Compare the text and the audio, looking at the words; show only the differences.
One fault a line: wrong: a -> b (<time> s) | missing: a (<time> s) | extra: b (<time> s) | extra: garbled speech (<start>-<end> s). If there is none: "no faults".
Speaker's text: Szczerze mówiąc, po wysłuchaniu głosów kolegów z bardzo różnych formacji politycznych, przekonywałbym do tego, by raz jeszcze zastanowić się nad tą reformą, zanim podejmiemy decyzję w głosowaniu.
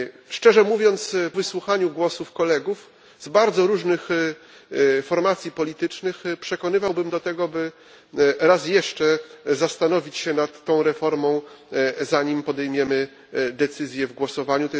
missing: po (1.1 s)